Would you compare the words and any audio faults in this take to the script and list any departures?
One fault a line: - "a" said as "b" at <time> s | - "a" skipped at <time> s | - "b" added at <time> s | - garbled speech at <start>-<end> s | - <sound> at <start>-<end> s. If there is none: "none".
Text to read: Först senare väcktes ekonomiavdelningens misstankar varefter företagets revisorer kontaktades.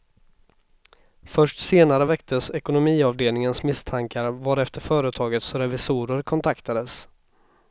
none